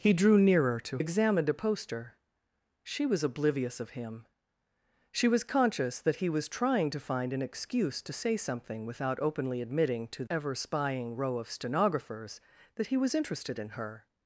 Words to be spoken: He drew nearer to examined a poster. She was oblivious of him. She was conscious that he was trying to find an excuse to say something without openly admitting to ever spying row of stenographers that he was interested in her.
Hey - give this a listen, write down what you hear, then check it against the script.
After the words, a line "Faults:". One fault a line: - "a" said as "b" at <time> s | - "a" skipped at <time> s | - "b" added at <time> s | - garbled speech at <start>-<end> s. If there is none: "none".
He drew nearer to examined a poster. She was oblivious of him. She was conscious that he was trying to find an excuse to say something without openly admitting to ever spying row of stenographers that he was interested in her.
Faults:
none